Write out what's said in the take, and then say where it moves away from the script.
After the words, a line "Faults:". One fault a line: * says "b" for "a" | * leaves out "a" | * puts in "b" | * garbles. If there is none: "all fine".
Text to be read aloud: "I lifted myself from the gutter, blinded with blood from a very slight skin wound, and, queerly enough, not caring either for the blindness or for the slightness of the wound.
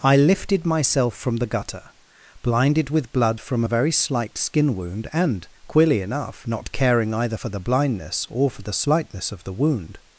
"I lifted myself from the gutter, blinded with blood from a very slight skin wound, and, queerly enough, not caring either for the blindness or for the slightness of the wound.
Faults:
all fine